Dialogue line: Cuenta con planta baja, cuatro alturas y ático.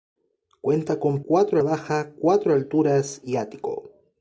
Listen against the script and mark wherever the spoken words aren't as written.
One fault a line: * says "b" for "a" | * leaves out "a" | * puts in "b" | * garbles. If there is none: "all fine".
* says "cuatro" for "planta"